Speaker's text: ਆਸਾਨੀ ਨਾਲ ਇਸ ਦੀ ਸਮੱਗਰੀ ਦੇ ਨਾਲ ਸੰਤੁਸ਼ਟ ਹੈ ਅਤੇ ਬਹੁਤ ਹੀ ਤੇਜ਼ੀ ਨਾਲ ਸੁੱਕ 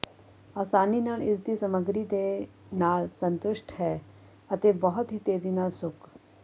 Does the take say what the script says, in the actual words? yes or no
yes